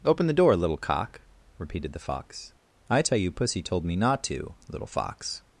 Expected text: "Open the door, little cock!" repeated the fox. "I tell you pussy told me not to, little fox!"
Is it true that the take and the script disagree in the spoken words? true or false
false